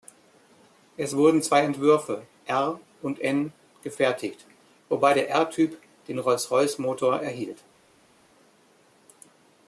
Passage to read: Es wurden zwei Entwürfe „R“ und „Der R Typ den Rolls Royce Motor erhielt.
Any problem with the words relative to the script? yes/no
yes